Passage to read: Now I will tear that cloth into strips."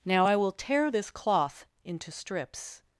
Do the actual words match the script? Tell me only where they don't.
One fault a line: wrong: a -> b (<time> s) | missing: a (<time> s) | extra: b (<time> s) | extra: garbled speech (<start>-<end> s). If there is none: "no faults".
wrong: that -> this (0.9 s)